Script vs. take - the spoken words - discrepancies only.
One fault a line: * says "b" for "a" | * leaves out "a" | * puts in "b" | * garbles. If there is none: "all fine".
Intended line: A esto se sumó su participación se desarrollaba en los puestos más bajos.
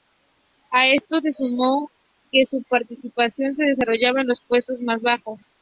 * puts in "que"